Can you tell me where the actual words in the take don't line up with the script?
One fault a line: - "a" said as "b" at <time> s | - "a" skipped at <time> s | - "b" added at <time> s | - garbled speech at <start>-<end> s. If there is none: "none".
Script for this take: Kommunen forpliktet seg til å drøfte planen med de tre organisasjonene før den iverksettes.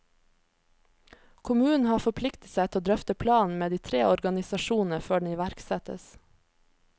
- "har" added at 1.9 s